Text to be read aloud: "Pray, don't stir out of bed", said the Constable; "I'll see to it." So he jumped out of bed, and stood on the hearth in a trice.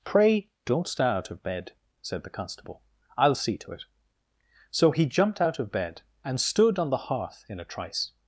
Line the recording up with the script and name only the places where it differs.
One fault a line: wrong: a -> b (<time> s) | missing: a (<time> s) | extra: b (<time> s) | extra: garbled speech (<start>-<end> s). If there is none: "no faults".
no faults